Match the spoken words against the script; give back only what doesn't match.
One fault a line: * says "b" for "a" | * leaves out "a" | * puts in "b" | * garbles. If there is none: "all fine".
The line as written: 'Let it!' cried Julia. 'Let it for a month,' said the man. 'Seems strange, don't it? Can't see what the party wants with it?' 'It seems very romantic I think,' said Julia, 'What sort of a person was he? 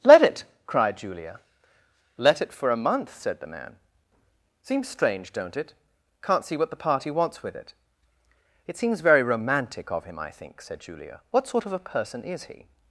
* puts in "of him"
* says "is" for "was"